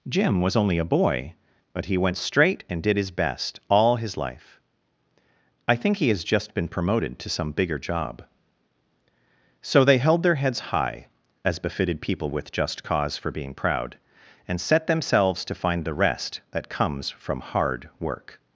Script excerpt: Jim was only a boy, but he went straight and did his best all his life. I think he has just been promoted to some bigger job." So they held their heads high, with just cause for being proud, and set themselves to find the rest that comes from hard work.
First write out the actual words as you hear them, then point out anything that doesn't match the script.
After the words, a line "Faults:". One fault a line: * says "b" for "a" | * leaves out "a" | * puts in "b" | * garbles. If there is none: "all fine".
Jim was only a boy, but he went straight and did his best all his life. I think he has just been promoted to some bigger job." So they held their heads high, as befitted people with just cause for being proud, and set themselves to find the rest that comes from hard work.
Faults:
* puts in "as befitted people"